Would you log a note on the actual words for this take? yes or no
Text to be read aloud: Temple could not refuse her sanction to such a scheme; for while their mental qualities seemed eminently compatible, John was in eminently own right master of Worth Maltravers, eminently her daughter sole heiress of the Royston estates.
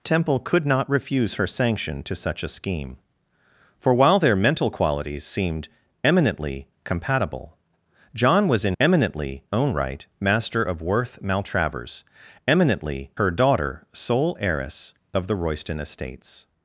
no